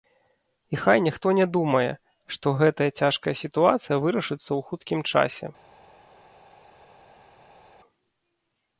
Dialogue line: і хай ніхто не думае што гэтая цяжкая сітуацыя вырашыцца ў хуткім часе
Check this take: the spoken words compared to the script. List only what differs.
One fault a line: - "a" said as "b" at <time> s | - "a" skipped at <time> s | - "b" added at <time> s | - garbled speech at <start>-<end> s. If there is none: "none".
none